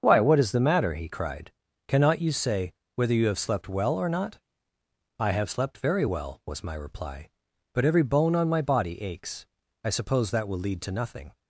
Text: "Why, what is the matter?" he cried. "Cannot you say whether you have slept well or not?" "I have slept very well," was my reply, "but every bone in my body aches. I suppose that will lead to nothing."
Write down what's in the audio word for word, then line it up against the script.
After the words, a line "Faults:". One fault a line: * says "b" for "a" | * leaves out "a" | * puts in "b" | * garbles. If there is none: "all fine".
"Why, what is the matter?" he cried. "Cannot you say whether you have slept well or not?" "I have slept very well," was my reply, "but every bone on my body aches. I suppose that will lead to nothing."
Faults:
* says "on" for "in"